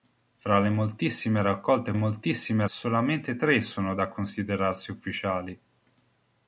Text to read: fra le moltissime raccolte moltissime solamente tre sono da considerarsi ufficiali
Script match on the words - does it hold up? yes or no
yes